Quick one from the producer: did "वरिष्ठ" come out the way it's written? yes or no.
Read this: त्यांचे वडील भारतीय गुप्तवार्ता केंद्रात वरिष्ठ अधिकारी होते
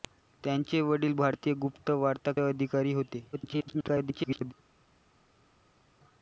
no